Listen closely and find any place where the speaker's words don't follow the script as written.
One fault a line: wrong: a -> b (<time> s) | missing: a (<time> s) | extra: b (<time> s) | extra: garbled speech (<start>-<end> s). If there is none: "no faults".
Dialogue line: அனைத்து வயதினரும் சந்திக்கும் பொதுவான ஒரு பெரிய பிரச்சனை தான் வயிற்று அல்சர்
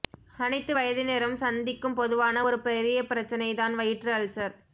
no faults